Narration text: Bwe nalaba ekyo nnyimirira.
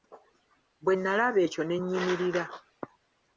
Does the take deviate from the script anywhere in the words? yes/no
yes